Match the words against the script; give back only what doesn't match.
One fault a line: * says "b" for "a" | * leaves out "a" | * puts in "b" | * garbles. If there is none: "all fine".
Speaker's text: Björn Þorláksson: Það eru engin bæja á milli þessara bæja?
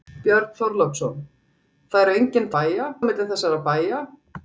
all fine